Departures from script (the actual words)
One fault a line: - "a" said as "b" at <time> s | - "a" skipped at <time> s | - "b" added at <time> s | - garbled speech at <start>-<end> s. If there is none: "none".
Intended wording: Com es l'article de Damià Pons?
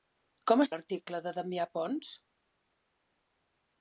none